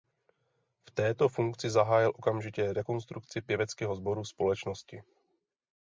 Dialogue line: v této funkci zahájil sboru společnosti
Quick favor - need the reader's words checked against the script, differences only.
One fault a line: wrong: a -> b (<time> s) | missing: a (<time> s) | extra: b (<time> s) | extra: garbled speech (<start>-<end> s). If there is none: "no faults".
extra: okamžitě rekonstrukci pěveckého (2.2 s)